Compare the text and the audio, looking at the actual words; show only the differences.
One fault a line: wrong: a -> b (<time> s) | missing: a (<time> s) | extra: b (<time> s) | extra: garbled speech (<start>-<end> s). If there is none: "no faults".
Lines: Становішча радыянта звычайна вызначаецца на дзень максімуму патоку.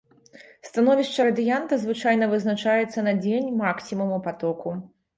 no faults